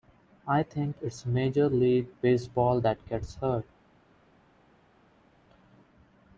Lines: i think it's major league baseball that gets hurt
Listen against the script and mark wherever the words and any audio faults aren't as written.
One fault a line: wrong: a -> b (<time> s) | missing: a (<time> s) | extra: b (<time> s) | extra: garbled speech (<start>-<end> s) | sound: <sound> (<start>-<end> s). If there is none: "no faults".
no faults